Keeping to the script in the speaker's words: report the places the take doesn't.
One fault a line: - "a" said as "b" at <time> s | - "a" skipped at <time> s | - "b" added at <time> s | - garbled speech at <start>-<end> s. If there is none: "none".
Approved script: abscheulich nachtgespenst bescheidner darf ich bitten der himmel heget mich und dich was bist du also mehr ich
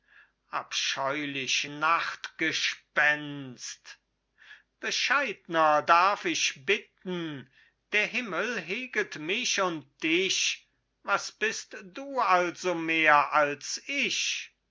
- "als" added at 13.3 s